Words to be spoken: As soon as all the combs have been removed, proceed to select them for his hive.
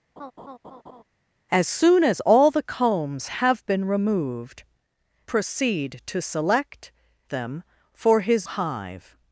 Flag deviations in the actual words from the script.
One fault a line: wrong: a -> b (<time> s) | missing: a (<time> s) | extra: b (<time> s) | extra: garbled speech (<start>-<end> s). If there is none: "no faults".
no faults